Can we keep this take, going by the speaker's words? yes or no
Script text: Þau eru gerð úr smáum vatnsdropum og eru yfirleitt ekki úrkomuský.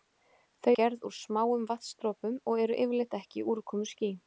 no